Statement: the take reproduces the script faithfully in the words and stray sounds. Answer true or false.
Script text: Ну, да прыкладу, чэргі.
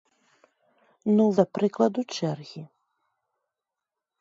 true